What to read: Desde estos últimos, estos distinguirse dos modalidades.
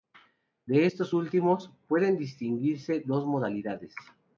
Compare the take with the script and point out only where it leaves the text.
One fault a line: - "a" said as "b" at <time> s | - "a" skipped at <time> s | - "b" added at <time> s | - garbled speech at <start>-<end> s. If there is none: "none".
- "Desde" said as "De" at 0.7 s
- "estos" said as "pueden" at 1.9 s